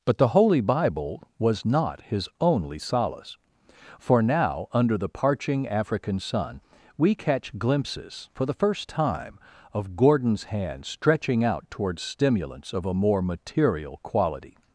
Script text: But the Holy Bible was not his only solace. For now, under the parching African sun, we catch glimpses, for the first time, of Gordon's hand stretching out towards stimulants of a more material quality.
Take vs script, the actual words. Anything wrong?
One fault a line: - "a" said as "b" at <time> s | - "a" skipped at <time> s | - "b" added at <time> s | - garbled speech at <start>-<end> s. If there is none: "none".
none